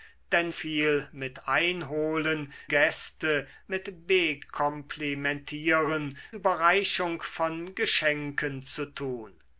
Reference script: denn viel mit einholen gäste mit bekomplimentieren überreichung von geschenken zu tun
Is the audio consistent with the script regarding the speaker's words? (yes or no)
yes